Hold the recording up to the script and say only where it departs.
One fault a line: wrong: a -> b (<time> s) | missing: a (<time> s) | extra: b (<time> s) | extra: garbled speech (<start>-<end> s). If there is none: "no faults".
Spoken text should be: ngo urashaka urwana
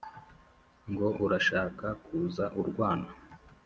extra: kuza (2.0 s)